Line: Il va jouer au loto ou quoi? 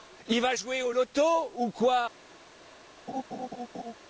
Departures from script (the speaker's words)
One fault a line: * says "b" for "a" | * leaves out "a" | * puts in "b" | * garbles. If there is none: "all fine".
all fine